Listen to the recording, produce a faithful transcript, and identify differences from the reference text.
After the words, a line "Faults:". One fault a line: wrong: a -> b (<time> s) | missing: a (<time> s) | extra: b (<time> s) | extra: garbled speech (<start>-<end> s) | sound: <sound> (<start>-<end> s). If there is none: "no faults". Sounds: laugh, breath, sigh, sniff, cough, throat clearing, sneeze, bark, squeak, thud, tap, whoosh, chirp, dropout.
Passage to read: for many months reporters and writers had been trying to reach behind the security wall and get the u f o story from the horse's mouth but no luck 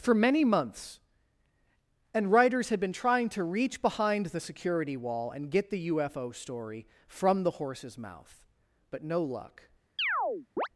for many months and writers had been trying to reach behind the security wall and get the u f o story from the horse's mouth but no luck
Faults:
missing: reporters (1.0 s)
sound: chirp (10.0-10.7 s)